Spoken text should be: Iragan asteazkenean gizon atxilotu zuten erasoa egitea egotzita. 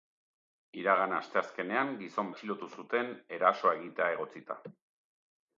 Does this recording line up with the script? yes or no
yes